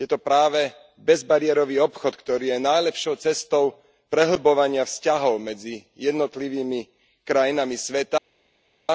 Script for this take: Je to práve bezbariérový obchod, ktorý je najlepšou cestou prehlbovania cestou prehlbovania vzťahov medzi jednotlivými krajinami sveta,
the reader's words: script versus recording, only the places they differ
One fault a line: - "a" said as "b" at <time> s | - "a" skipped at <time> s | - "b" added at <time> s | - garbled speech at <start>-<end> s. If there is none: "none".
- "cestou prehlbovania" skipped at 4.8 s